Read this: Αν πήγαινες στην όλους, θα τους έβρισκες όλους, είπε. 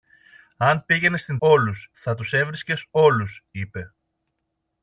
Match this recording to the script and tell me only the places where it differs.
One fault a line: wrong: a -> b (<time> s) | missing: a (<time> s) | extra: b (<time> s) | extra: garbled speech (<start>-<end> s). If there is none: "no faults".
no faults